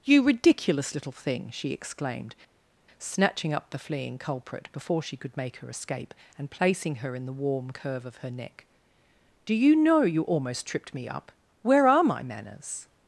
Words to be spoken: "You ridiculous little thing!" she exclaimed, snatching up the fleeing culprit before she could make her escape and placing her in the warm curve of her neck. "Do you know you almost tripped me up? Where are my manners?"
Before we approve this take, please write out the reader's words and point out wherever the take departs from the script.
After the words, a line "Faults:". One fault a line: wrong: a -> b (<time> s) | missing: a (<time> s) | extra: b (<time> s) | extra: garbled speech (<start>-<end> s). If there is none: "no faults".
"You ridiculous little thing!" she exclaimed, snatching up the fleeing culprit before she could make her escape and placing her in the warm curve of her neck. "Do you know you almost tripped me up? Where are my manners?"
Faults:
no faults